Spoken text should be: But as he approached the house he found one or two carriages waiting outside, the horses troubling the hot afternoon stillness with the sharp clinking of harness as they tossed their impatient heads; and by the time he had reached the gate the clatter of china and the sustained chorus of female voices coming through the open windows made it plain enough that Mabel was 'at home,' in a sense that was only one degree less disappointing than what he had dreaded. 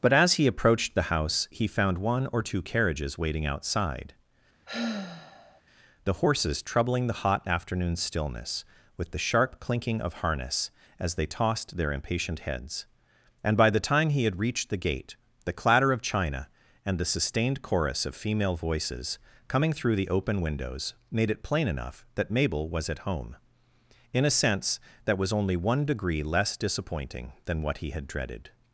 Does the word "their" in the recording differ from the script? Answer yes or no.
no